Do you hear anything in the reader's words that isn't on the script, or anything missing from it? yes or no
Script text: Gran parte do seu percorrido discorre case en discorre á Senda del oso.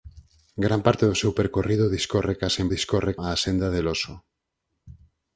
no